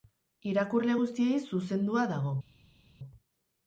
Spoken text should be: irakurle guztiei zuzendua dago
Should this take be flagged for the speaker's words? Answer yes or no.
no